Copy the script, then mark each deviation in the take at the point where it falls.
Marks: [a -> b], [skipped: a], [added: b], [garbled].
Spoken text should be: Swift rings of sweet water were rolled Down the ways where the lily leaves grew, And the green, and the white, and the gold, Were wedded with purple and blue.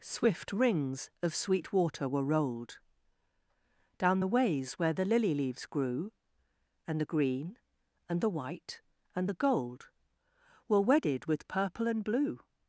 Swift rings of sweet water were rolled Down the ways where the lily leaves grew, And the green, and the white, and the gold, Were wedded with purple and blue.